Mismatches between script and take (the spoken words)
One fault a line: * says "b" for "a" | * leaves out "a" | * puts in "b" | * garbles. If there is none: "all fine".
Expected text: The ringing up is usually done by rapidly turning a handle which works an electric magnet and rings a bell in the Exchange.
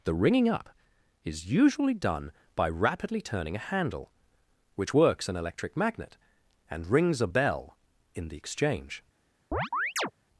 all fine